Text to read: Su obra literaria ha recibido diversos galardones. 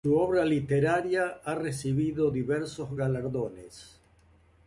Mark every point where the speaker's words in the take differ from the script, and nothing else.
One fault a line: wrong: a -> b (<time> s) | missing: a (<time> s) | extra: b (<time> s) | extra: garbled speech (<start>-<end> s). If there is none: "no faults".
no faults